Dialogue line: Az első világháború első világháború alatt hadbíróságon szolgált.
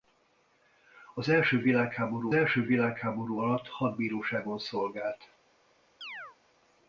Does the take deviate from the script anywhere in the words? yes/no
no